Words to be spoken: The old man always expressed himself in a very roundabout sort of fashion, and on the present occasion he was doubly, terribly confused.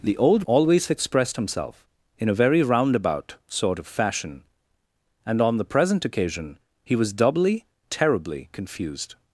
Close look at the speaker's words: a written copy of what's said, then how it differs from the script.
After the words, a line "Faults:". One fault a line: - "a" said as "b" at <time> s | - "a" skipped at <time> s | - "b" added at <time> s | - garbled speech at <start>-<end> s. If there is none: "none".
The old always expressed himself in a very roundabout sort of fashion, and on the present occasion he was doubly, terribly confused.
Faults:
- "man" skipped at 0.5 s